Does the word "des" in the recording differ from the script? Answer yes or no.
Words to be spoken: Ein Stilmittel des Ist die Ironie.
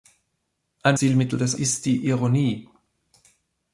no